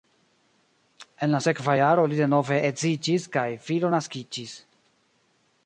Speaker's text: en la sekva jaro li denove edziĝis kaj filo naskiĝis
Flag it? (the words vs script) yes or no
no